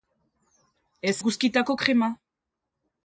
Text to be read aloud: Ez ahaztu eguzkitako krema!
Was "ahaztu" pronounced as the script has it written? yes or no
no